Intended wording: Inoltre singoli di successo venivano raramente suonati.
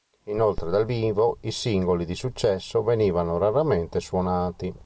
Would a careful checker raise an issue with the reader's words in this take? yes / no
yes